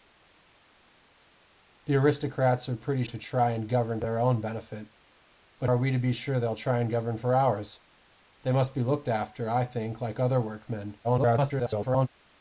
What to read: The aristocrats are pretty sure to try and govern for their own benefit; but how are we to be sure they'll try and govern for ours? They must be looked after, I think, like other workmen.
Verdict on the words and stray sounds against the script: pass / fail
fail